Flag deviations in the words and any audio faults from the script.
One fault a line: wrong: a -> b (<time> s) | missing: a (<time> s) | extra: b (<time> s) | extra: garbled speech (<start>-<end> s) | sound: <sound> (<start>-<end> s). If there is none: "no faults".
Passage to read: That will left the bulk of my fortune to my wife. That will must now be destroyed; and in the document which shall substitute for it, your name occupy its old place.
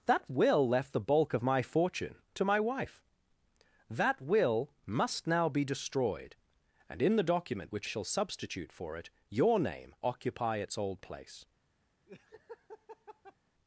sound: laugh (12.1-13.4 s)